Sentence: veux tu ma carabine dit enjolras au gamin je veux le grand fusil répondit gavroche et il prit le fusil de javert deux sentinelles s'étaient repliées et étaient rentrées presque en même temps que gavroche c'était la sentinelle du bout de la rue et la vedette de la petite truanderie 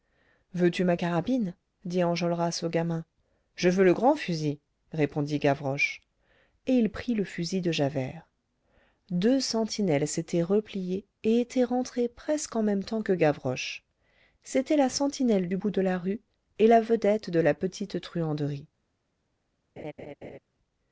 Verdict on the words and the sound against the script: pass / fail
fail